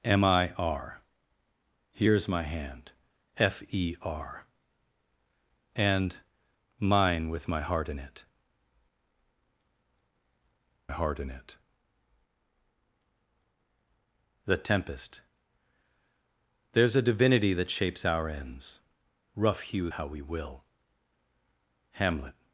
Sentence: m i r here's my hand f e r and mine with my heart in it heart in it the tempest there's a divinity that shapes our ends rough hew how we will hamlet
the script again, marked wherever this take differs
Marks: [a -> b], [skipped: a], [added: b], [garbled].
m i r here's my hand f e r and mine with my heart in it heart in it the tempest there's a divinity that shapes our ends rough hew how we will hamlet